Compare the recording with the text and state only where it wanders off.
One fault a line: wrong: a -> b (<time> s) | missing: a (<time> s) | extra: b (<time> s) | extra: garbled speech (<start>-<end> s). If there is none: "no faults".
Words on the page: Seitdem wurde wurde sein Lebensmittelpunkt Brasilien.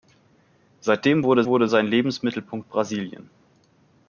no faults